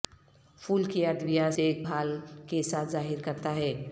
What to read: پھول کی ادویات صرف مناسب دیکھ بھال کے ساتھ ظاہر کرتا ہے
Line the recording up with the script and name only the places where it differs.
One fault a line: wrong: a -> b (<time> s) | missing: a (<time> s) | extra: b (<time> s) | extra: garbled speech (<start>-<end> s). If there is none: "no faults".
missing: صرف مناسب (1.5 s)